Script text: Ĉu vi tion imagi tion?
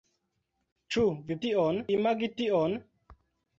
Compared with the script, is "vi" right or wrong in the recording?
right